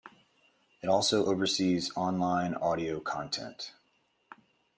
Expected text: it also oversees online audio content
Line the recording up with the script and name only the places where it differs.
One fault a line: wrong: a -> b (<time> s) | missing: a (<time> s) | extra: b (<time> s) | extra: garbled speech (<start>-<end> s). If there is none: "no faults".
no faults